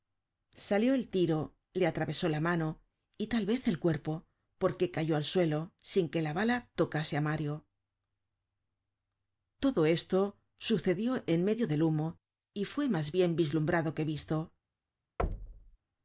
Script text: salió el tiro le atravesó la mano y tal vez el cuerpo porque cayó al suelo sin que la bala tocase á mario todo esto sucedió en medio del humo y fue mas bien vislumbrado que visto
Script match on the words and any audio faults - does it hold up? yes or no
no